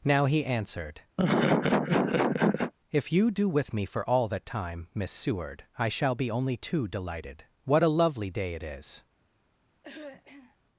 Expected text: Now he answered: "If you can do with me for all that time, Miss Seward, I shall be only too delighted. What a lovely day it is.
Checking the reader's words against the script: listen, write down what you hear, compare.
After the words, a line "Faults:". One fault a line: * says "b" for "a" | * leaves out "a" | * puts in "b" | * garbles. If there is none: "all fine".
Now he answered: "If you do with me for all that time, Miss Seward, I shall be only too delighted. What a lovely day it is.
Faults:
* leaves out "can"